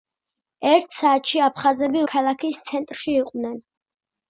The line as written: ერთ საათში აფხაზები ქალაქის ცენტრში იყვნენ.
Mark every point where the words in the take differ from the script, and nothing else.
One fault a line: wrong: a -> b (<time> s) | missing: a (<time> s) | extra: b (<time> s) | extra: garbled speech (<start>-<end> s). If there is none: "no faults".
no faults